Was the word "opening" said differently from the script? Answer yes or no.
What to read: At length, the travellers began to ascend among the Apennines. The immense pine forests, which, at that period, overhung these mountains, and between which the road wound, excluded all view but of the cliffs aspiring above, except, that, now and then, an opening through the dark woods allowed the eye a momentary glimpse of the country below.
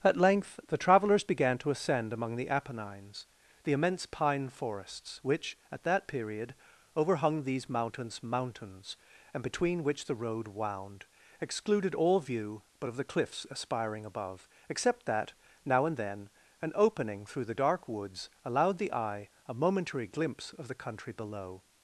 no